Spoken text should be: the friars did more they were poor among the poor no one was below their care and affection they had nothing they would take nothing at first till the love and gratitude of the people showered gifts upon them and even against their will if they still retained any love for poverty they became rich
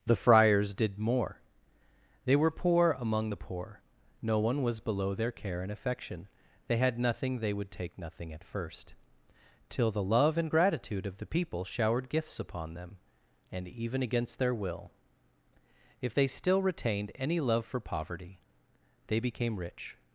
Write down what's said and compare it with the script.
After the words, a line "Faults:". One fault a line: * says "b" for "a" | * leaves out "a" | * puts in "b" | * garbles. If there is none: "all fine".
the friars did more they were poor among the poor no one was below their care and affection they had nothing they would take nothing at first till the love and gratitude of the people showered gifts upon them and even against their will if they still retained any love for poverty they became rich
Faults:
all fine